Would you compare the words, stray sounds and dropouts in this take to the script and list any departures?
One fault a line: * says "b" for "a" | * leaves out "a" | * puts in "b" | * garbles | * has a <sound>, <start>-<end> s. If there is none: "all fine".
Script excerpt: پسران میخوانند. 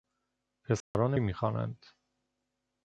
* has a dropout, 0.8-0.9 s